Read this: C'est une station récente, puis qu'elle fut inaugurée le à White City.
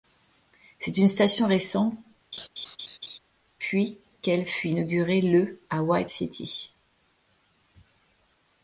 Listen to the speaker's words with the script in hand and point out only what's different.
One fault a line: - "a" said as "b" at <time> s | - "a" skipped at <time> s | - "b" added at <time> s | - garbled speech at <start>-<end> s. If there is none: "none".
none